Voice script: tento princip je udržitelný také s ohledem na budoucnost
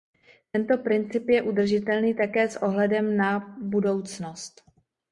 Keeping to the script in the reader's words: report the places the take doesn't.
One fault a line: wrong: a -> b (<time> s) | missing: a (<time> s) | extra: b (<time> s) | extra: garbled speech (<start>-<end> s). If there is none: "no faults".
no faults